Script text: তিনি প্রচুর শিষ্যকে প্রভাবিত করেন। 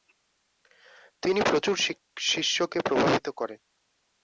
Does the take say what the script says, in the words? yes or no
yes